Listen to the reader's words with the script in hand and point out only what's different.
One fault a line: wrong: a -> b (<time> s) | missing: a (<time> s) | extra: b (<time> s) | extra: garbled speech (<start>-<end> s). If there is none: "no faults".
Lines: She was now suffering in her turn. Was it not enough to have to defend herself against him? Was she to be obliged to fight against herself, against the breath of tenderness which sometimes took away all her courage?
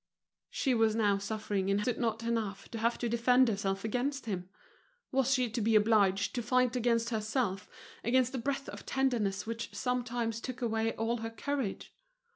missing: her turn Was (1.8 s)